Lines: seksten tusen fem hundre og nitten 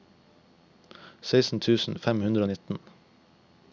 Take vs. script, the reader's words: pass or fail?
pass